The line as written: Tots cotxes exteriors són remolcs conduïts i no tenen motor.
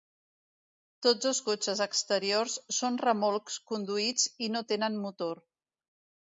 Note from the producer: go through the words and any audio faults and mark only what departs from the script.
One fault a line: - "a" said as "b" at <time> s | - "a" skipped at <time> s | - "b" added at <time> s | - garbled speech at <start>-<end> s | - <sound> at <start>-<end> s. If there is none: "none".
- "dos" added at 1.2 s